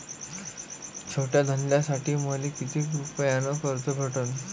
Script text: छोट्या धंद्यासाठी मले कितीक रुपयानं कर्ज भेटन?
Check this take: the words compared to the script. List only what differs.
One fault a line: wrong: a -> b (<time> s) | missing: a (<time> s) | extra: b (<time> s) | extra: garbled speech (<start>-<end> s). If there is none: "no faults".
no faults